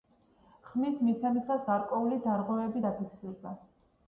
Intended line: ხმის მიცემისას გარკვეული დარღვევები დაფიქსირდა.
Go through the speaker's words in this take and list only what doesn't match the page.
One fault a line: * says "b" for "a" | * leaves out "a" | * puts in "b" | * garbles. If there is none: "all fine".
all fine